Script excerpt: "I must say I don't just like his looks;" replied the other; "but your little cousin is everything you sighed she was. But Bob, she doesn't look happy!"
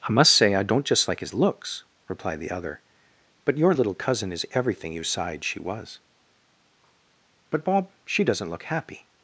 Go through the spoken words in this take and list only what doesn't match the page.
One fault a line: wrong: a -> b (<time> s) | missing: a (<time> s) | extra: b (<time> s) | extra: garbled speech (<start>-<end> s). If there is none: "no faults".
no faults